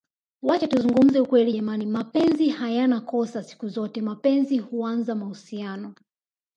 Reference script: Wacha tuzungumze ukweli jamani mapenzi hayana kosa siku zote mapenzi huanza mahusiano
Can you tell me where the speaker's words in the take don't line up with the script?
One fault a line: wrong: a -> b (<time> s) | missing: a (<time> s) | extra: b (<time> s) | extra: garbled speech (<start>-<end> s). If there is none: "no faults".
no faults